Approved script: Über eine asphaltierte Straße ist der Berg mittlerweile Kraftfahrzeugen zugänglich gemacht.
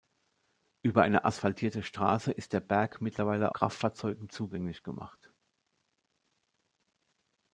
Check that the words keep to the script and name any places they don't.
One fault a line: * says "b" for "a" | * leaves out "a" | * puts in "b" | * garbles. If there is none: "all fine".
all fine